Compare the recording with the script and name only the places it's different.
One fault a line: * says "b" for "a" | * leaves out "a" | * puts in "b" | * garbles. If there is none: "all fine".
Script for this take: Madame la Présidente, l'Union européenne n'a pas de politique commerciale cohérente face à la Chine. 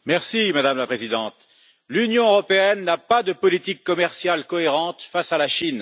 all fine